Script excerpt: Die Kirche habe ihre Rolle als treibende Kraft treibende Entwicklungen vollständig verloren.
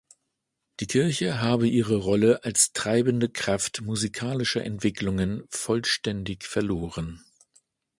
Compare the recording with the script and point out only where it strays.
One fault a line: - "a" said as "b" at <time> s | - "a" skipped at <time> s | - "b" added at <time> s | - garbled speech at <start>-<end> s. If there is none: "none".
- "treibende" said as "musikalischer" at 3.8 s